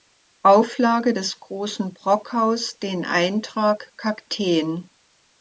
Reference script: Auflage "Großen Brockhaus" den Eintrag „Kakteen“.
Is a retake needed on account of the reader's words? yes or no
yes